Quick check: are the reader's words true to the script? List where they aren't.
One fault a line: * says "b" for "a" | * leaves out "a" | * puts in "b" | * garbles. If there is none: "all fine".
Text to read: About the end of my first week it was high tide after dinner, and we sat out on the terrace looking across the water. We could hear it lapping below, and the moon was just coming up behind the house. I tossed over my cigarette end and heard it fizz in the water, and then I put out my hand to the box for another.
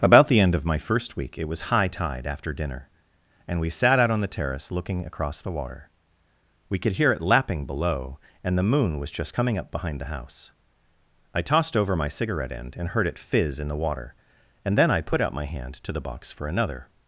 all fine